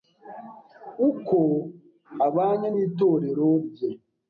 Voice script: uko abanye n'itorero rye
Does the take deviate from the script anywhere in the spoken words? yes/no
no